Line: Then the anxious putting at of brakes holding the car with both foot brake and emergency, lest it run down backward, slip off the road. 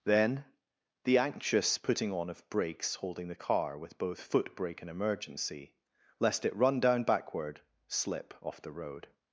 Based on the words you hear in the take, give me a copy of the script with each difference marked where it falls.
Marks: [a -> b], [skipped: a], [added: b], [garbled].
Then the anxious putting [at -> on] of brakes holding the car with both foot brake and emergency, lest it run down backward, slip off the road.